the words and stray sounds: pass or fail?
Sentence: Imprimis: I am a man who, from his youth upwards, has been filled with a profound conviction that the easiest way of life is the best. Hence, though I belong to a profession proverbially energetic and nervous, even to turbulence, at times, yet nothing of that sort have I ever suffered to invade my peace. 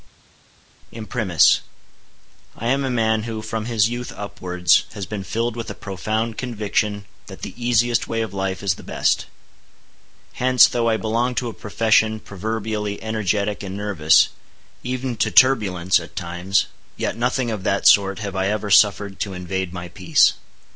pass